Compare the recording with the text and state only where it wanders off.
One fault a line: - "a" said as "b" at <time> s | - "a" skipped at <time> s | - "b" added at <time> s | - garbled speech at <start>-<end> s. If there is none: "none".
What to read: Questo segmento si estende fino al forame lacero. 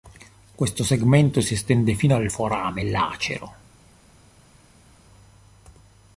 none